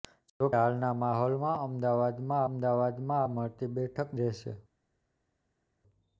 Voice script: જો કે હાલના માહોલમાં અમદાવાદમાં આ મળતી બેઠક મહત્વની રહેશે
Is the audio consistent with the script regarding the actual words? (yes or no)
no